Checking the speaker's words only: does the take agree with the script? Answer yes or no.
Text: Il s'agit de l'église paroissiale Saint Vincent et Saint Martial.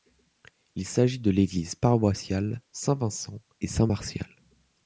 yes